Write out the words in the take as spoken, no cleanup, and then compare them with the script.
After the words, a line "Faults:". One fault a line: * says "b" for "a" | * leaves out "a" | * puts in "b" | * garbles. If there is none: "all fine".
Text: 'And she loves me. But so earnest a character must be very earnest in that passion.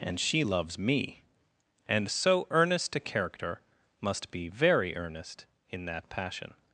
'And she loves me. And so earnest a character must be very earnest in that passion.
Faults:
* says "And" for "But"